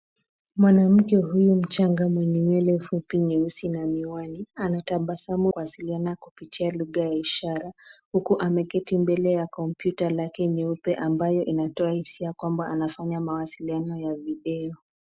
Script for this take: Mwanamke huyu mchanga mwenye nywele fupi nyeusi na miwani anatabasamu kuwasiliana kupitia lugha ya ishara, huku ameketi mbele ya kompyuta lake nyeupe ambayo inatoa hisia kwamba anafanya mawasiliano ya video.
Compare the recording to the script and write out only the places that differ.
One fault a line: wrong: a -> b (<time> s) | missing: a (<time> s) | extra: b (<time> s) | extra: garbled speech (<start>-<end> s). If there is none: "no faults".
no faults